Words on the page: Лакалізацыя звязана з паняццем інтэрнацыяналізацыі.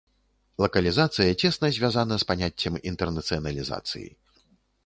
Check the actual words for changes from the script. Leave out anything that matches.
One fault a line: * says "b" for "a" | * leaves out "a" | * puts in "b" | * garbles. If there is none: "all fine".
* puts in "цесна"